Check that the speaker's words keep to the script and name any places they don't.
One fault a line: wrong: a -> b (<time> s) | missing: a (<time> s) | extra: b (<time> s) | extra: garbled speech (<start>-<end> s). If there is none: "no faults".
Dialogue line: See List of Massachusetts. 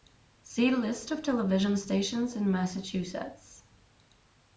extra: television stations in (1.2 s)